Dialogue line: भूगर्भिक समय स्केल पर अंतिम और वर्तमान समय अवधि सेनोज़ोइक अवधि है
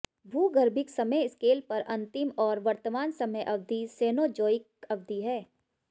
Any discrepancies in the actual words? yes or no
no